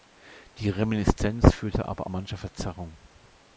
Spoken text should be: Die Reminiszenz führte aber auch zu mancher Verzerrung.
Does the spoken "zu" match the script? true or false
false